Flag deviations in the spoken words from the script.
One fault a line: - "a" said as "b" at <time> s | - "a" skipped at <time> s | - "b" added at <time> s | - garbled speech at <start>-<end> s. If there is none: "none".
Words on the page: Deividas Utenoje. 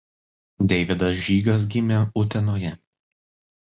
- "Žygas gimė" added at 1.2 s